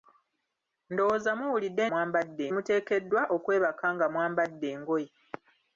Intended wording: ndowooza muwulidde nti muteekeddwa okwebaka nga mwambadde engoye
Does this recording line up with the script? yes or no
no